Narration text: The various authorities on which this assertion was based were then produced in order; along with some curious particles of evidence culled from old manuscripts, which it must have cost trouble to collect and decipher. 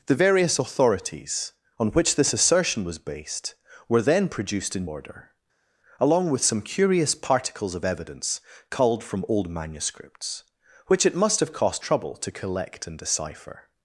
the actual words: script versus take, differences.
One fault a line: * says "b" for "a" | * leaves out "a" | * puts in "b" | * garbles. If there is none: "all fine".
all fine